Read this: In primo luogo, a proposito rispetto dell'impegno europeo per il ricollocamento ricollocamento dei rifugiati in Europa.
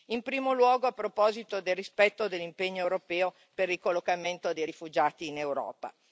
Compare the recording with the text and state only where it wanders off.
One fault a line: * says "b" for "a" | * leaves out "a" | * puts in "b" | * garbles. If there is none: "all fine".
* puts in "del"
* leaves out "ricollocamento"